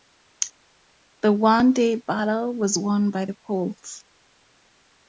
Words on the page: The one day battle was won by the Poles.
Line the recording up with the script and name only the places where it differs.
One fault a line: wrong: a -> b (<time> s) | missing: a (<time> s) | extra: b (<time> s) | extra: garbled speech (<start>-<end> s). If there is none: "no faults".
no faults